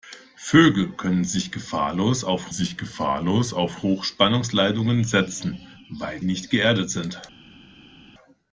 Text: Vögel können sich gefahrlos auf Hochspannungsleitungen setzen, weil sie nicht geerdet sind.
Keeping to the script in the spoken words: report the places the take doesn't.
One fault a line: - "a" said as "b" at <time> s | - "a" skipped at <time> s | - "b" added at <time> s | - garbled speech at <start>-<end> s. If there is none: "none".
- "sich gefahrlos auf" added at 2.5 s
- "sie" skipped at 6.2 s